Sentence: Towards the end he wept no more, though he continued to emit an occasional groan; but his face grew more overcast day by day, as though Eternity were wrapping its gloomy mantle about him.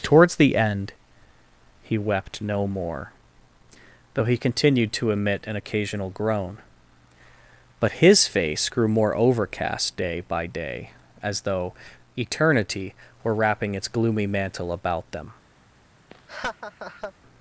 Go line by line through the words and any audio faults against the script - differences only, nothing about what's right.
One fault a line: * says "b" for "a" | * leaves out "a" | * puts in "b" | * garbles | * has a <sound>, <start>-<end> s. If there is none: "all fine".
* says "them" for "him"
* has a laugh, 16.1-17.1 s